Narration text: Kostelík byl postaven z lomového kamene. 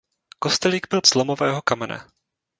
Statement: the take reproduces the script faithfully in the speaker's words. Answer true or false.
false